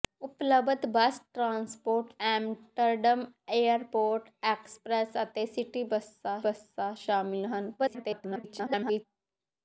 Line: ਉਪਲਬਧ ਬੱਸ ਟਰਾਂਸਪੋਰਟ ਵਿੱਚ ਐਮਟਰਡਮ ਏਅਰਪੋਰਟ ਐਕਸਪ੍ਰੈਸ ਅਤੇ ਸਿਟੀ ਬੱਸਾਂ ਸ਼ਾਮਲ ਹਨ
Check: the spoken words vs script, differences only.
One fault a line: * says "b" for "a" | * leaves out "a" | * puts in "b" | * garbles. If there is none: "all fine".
* leaves out "ਵਿੱਚ"
* puts in "ਬੱਸਾਂ"
* garbles